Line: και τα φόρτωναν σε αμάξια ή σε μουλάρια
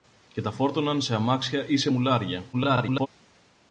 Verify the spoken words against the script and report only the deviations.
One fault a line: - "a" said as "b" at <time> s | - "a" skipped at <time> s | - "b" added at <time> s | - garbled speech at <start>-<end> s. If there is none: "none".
- garbled speech at 2.5-3.1 s